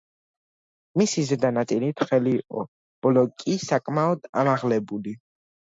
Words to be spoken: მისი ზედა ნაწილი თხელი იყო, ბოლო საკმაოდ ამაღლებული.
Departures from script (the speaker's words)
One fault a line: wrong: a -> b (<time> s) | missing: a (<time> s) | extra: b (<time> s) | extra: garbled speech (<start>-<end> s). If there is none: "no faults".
extra: კი (3.5 s)